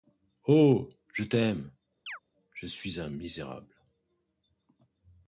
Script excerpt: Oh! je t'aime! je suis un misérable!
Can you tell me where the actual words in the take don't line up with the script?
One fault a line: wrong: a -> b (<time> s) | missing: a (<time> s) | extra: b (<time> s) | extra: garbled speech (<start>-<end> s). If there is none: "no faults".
no faults